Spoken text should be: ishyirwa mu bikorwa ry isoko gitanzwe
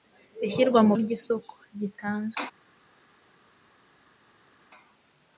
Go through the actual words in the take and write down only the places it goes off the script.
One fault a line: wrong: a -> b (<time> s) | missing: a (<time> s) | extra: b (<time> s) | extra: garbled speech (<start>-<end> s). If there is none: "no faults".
missing: bikorwa (0.9 s)